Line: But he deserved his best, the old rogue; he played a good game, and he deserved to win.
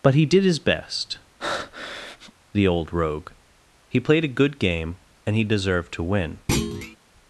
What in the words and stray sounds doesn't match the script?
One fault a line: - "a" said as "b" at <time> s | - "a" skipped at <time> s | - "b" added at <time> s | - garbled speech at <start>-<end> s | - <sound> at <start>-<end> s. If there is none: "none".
- "deserved" said as "did" at 0.2 s
- breath at 1.4-2.3 s
- thud at 6.5-7.0 s